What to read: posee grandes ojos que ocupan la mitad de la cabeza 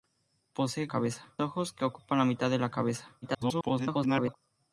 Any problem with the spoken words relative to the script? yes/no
yes